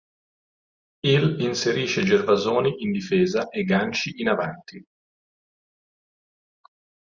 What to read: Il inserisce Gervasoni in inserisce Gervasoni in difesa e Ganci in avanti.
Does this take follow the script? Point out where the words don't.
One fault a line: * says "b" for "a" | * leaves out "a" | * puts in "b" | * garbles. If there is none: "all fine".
* leaves out "inserisce Gervasoni in"